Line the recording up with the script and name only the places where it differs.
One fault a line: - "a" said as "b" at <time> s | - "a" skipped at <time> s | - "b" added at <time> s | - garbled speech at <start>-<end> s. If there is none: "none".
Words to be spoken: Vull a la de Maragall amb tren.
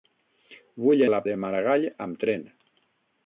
none